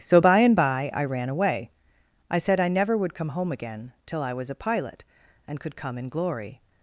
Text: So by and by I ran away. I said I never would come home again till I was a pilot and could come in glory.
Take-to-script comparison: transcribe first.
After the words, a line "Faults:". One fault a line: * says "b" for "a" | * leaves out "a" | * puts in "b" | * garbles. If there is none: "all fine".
So by and by I ran away. I said I never would come home again till I was a pilot and could come in glory.
Faults:
all fine